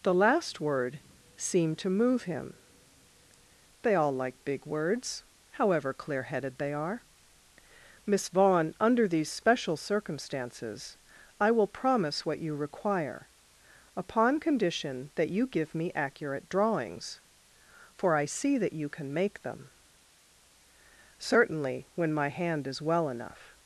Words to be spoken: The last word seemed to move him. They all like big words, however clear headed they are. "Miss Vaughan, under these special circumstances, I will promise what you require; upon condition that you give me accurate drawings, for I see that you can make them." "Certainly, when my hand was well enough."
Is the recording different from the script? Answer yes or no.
yes